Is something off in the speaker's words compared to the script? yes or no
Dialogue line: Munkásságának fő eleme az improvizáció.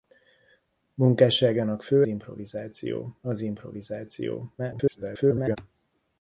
yes